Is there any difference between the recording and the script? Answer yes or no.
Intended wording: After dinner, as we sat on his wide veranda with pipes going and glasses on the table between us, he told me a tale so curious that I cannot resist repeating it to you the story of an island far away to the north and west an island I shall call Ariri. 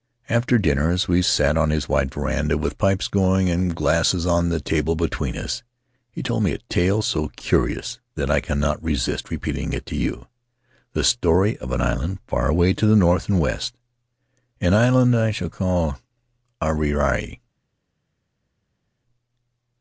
no